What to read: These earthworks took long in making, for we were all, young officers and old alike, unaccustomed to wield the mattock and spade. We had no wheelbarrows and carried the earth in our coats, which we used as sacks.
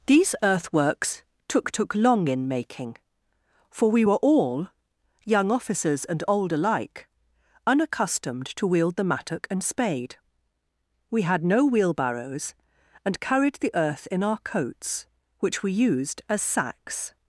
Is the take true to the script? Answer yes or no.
no